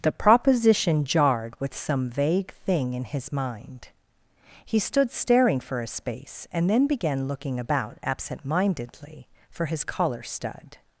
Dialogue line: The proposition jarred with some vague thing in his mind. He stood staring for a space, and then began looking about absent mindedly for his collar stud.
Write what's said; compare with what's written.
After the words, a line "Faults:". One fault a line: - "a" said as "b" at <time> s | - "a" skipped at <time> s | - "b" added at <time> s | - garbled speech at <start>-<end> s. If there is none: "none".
The proposition jarred with some vague thing in his mind. He stood staring for a space, and then began looking about absent mindedly for his collar stud.
Faults:
none